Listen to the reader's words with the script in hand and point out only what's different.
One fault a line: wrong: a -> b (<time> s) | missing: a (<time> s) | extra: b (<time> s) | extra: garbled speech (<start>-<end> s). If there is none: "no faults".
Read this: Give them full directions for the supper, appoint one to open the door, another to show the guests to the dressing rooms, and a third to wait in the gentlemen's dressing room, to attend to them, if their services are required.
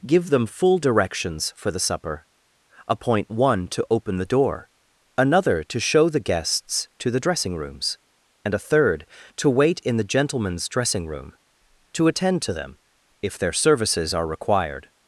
no faults